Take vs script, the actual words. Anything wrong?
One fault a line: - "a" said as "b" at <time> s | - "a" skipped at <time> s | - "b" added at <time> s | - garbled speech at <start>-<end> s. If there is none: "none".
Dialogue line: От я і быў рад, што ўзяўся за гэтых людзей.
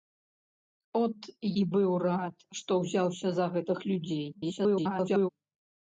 - "я" skipped at 1.3 s
- garbled speech at 4.3-5.3 s